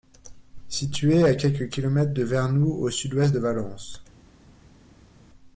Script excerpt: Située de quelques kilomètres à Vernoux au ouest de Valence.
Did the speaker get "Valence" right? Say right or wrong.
right